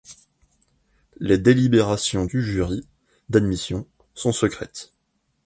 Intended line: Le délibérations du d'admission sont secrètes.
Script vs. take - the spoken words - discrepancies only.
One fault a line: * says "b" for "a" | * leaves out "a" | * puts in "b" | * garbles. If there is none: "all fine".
* says "Les" for "Le"
* puts in "jury"